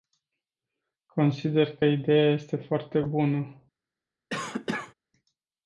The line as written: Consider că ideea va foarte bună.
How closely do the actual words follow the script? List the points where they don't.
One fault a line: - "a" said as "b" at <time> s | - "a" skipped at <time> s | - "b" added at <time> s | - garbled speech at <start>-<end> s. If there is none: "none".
- "va" said as "este" at 2.3 s